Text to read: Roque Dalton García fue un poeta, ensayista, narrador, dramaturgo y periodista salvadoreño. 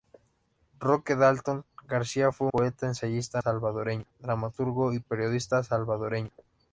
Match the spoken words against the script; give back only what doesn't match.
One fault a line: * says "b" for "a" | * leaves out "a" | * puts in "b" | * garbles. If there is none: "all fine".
* leaves out "un"
* says "salvadoreño" for "narrador"